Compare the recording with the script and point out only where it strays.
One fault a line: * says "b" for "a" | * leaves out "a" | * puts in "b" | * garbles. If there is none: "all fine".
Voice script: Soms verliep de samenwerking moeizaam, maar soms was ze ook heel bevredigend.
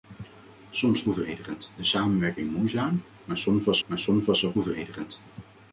* says "bevredigend" for "verliep"
* puts in "maar soms was"
* leaves out "heel"